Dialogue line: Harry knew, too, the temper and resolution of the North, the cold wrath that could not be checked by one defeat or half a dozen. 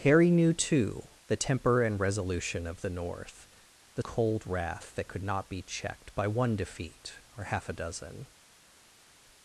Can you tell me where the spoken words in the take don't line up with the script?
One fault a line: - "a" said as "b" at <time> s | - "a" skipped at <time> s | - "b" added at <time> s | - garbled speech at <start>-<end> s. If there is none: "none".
none